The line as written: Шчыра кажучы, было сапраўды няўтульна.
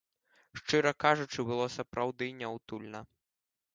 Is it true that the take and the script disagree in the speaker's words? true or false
false